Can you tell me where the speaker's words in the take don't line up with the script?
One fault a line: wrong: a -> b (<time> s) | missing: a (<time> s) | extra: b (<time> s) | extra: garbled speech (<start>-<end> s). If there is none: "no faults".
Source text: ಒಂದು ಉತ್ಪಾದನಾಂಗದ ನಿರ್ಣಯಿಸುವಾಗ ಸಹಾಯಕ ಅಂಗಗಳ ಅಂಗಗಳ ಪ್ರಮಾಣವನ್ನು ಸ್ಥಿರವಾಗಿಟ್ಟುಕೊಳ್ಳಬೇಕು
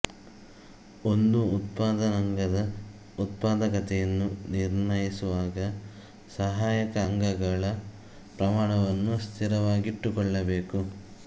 extra: ಉತ್ಪಾದಕತೆಯನ್ನು (3.2 s)
missing: ಅಂಗಗಳ (7.7 s)